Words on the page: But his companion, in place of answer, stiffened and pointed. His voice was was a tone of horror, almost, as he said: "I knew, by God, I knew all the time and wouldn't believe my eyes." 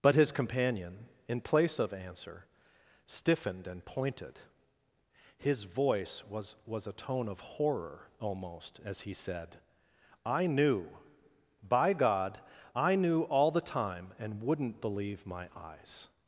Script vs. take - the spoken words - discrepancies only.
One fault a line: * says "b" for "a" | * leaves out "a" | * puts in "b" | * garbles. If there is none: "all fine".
all fine